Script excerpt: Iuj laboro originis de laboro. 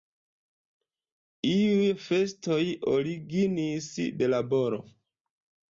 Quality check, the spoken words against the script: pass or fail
fail